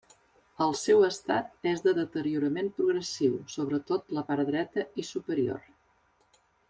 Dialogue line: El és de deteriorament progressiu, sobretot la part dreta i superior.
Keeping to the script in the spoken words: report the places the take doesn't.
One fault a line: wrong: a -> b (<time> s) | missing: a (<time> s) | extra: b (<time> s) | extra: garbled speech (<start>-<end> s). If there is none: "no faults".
extra: seu estat (0.8 s)